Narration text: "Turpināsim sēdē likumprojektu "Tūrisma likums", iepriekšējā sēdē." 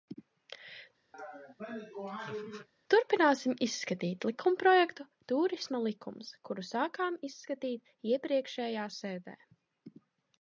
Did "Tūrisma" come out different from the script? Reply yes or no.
no